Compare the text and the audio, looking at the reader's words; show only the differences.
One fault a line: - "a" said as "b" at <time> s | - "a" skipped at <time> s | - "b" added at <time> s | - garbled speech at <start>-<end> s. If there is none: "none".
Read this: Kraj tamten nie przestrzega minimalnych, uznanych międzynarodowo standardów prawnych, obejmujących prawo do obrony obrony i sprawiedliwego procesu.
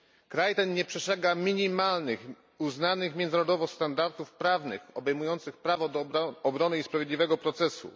- "tamten" said as "ten" at 0.5 s
- "obrony" skipped at 6.8 s